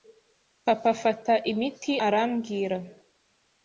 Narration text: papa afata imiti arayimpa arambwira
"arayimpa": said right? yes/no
no